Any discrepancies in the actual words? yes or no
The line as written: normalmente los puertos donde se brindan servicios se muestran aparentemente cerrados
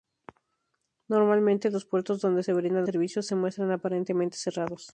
no